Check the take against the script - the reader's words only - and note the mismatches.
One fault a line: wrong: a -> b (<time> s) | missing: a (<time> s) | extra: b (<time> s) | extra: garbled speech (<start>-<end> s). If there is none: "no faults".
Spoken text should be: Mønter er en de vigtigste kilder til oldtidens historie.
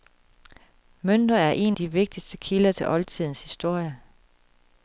no faults